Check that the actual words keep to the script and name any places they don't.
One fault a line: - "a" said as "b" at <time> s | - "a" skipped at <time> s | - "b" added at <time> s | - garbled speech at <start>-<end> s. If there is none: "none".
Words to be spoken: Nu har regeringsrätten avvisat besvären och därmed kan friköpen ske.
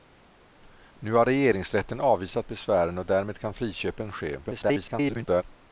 - garbled speech at 4.4-5.4 s